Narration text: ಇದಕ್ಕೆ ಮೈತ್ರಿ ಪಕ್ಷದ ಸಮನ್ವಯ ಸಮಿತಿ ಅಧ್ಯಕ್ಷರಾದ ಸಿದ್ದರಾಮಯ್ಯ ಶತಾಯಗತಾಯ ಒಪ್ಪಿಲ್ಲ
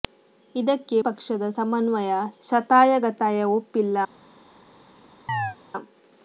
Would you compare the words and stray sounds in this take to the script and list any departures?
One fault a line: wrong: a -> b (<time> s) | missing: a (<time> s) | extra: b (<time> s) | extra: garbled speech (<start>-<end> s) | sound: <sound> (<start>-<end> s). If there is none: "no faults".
missing: ಮೈತ್ರಿ (1.0 s)
missing: ಸಮಿತಿ ಅಧ್ಯಕ್ಷರಾದ ಸಿದ್ದರಾಮಯ್ಯ (2.1 s)
sound: chirp (5.3-5.6 s)